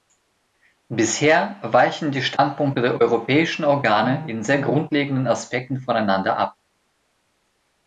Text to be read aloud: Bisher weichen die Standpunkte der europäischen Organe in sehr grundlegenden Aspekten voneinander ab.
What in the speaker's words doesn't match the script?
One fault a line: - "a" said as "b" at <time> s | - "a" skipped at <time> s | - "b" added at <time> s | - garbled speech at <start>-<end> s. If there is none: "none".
none